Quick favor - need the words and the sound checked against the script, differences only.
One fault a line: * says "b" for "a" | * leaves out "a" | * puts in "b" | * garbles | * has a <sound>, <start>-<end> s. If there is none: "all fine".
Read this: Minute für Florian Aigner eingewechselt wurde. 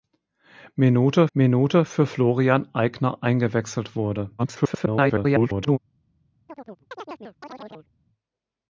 * puts in "minute"
* garbles
* has a chirp, 6.5-7.9 s